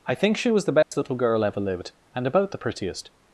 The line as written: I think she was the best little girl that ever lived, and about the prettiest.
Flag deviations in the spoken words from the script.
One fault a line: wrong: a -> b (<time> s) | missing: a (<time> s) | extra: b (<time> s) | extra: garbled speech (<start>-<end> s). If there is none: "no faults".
missing: that (1.4 s)